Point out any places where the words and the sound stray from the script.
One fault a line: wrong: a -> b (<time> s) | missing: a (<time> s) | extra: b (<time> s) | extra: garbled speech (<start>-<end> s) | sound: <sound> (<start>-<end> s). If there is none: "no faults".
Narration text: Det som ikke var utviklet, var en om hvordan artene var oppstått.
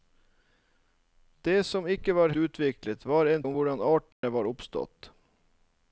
sound: dropout (4.1-4.2 s)